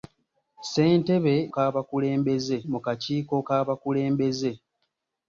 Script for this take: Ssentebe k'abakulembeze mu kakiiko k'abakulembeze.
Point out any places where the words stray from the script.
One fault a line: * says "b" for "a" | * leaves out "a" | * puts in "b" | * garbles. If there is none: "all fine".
all fine